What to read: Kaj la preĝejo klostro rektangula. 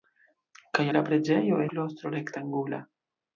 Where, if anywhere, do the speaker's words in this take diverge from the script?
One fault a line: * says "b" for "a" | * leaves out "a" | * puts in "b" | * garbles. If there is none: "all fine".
all fine